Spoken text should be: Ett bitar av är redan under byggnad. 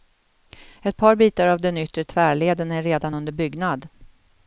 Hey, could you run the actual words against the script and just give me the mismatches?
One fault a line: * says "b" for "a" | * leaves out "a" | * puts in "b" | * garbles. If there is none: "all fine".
* puts in "par"
* puts in "den yttre tvärleden"